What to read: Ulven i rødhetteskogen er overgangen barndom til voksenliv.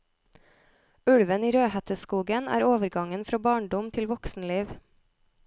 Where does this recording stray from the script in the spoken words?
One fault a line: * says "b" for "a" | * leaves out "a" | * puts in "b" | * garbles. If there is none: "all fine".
* puts in "fra"